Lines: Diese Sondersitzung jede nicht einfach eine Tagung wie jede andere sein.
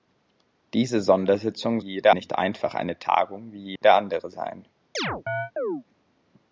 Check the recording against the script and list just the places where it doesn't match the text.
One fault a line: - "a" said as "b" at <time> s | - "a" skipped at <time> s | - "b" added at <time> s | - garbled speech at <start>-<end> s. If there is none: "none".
none